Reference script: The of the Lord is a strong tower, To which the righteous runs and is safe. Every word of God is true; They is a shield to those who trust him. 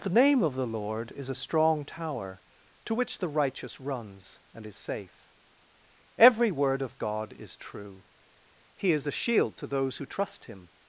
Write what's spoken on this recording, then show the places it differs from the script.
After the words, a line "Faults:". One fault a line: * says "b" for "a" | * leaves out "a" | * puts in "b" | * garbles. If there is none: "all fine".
The name of the Lord is a strong tower, To which the righteous runs and is safe. Every word of God is true; He is a shield to those who trust him.
Faults:
* puts in "name"
* says "He" for "They"